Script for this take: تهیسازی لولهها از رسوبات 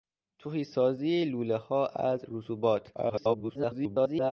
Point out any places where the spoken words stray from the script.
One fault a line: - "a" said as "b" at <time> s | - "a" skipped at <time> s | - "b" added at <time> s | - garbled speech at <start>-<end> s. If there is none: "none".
- garbled speech at 2.9-4.3 s